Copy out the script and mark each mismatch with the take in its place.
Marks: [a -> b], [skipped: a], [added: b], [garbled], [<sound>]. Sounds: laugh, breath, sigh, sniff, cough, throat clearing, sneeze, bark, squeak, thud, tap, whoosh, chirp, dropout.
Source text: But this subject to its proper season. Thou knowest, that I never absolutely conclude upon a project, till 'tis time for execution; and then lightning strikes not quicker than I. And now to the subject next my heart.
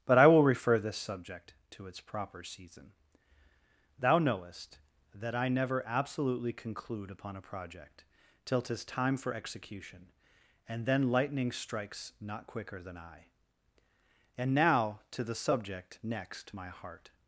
But [added: I will refer] this subject to its proper season. Thou knowest, that I never absolutely conclude upon a project, till 'tis time for execution; and then lightning strikes not quicker than I. And now to the subject next my heart.